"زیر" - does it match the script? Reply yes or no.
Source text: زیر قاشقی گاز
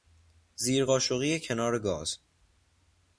yes